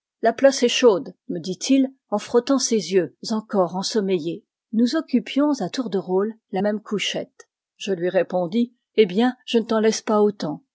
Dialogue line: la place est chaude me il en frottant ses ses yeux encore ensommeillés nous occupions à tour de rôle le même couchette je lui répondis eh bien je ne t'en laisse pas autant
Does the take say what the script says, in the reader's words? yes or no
no